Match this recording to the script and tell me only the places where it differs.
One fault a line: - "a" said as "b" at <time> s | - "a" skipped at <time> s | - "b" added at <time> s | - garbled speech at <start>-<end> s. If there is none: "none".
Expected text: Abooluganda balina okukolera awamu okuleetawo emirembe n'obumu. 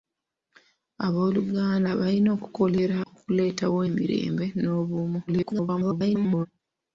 - "awamu" skipped at 3.0 s
- garbled speech at 5.3-6.5 s